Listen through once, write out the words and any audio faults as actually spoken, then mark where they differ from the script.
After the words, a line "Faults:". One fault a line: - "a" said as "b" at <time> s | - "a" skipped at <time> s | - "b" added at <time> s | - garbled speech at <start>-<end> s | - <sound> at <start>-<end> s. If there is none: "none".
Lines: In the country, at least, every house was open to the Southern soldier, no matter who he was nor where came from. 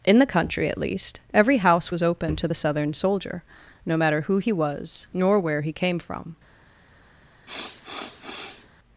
In the country, at least, every house was open to the Southern soldier, no matter who he was nor where he came from.
Faults:
- "he" added at 5.6 s
- sniff at 7.5-8.7 s